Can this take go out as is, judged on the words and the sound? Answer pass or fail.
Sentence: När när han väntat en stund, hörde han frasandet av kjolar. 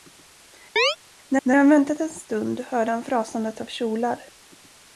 fail